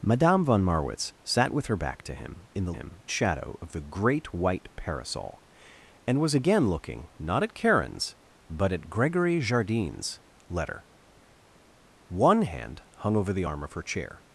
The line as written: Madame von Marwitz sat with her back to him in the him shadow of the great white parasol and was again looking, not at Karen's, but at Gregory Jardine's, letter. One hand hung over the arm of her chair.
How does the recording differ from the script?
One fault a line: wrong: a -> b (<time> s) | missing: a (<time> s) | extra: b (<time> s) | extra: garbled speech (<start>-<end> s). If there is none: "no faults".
no faults